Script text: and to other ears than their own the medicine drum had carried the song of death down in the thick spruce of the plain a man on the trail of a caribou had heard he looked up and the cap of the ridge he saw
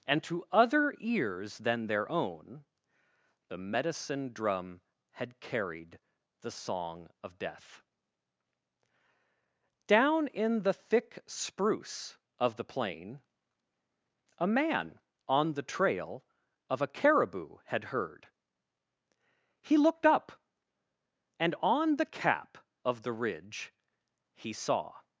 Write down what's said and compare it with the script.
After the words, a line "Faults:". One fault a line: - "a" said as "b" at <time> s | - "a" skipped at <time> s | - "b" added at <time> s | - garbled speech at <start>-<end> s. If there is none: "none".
and to other ears than their own the medicine drum had carried the song of death down in the thick spruce of the plain a man on the trail of a caribou had heard he looked up and on the cap of the ridge he saw
Faults:
- "on" added at 21.6 s